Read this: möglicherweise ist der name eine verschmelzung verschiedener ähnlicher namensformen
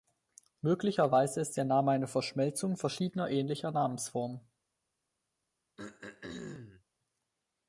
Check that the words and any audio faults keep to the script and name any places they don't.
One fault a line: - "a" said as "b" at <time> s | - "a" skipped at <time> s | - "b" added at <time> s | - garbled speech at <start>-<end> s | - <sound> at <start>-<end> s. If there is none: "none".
- throat clearing at 5.8-6.8 s